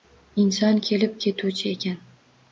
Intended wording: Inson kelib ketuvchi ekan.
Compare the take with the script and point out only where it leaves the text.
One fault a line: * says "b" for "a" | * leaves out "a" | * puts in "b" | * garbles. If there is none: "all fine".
all fine